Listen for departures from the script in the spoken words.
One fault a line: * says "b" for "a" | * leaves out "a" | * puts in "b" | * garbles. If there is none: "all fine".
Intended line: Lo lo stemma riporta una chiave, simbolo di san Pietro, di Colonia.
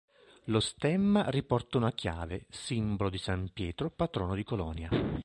* leaves out "lo"
* puts in "patrono"